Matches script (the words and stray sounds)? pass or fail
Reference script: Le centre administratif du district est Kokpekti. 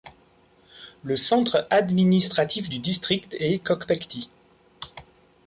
pass